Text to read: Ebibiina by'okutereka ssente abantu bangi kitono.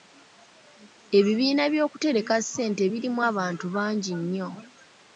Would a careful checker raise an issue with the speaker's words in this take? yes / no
yes